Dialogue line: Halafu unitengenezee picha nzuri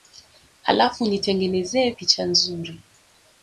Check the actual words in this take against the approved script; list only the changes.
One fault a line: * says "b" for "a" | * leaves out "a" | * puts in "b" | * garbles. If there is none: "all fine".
all fine